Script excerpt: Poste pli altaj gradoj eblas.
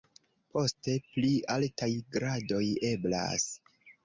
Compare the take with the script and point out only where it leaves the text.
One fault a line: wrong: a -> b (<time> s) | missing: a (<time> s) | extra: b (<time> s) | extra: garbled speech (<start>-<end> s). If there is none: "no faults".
no faults